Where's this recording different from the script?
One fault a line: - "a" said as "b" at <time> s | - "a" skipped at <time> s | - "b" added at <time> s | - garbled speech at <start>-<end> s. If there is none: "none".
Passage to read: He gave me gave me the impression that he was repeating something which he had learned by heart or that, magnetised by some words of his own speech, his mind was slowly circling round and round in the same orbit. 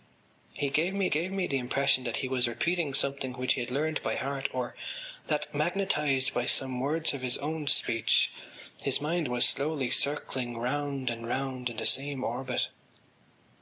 none